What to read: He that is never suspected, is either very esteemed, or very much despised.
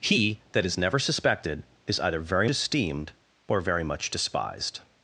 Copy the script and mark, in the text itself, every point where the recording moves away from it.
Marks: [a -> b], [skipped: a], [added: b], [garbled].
He that is never suspected, is either very esteemed, or very much despised.